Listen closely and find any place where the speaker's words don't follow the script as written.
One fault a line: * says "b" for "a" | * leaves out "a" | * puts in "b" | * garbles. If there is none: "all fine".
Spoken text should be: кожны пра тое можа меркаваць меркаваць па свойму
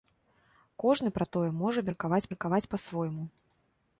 all fine